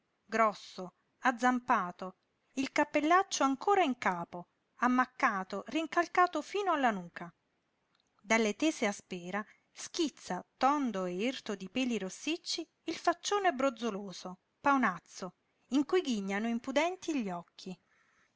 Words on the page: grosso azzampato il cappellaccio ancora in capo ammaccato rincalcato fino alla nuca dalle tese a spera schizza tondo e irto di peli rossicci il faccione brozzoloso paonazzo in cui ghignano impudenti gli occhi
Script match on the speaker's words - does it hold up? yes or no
yes